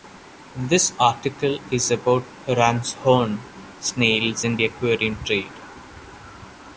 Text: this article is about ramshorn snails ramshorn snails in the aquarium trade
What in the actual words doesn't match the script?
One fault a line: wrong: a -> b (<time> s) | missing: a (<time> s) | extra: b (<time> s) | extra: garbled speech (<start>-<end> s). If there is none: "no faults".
missing: ramshorn snails (4.5 s)